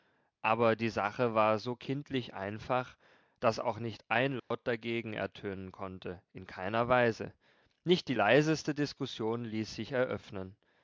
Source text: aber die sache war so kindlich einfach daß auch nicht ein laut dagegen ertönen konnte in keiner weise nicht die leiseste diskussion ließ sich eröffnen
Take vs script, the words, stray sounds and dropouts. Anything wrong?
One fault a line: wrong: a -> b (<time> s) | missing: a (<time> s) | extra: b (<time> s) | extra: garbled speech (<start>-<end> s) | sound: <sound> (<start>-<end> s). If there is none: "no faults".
sound: dropout (4.4-4.5 s)